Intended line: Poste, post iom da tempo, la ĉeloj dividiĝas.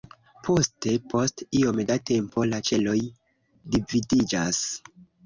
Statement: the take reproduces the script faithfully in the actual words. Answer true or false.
true